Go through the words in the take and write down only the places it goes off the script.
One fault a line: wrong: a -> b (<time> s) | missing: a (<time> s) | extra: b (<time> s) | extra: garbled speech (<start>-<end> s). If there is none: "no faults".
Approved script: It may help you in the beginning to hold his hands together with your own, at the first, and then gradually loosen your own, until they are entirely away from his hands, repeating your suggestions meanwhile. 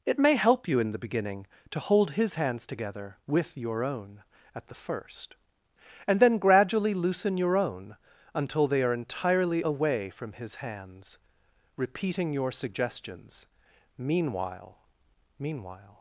extra: meanwhile (15.4 s)